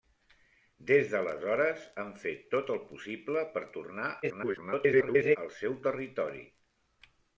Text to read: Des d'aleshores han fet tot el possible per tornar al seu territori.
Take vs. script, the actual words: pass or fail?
fail